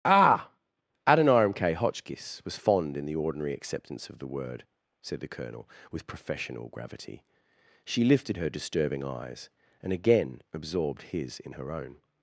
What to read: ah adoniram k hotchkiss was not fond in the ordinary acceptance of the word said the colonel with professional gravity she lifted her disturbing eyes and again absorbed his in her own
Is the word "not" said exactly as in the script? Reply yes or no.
no